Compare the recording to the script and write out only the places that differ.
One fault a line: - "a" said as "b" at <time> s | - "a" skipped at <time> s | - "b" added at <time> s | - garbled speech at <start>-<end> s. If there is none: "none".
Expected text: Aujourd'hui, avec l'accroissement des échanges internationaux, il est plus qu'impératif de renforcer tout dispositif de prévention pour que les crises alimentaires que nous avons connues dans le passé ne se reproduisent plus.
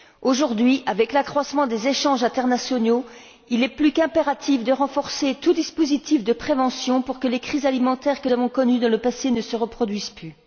- "nous" skipped at 8.3 s